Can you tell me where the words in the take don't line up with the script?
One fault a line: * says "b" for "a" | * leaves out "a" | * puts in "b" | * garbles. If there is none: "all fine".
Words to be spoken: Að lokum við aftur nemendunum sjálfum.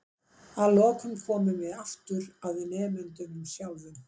* puts in "komum"
* puts in "að"